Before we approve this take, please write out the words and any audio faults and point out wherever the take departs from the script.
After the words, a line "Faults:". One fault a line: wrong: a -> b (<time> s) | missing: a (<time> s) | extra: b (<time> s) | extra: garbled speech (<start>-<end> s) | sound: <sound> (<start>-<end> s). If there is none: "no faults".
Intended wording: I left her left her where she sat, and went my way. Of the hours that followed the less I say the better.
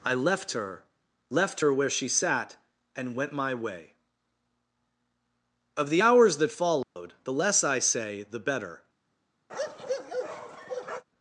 I left her left her where she sat, and went my way. Of the hours that followed the less I say the better.
Faults:
sound: dropout (6.8-7.0 s)
sound: bark (9.5-11.0 s)